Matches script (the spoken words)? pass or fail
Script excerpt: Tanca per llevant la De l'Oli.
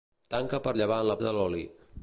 pass